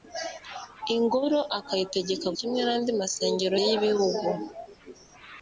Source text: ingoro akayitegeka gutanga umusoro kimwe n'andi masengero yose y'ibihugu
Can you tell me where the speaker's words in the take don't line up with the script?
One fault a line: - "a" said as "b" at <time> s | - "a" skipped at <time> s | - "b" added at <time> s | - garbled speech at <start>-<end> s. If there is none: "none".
- "gutanga umusoro" skipped at 2.3 s
- "yose" skipped at 3.6 s